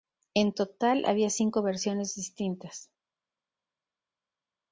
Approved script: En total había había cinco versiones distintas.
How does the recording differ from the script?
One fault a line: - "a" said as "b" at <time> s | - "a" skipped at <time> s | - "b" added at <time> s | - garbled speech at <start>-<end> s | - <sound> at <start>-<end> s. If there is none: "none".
- "había" skipped at 1.3 s